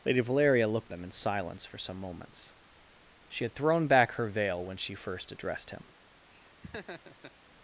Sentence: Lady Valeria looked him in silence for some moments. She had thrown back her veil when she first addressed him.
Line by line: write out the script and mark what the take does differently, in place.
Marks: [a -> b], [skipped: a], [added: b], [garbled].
Lady Valeria looked him in silence for some moments. She had thrown back her veil when she first addressed him.